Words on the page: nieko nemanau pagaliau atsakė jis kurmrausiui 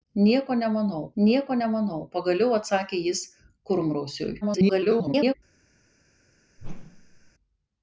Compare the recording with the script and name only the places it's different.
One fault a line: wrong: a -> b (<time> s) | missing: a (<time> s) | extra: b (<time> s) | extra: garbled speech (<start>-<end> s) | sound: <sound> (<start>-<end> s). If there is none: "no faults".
extra: nieko nemanau (1.2 s)
extra: garbled speech (4.4-5.3 s)
sound: whoosh (6.6-7.3 s)